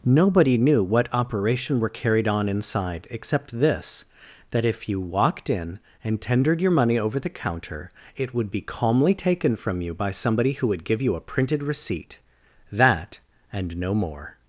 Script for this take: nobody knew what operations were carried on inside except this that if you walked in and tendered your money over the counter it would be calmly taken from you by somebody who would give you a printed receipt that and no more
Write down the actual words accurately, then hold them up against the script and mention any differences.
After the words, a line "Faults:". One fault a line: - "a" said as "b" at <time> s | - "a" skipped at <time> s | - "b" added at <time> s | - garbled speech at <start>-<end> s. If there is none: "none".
nobody knew what operation were carried on inside except this that if you walked in and tendered your money over the counter it would be calmly taken from you by somebody who would give you a printed receipt that and no more
Faults:
- "operations" said as "operation" at 1.1 s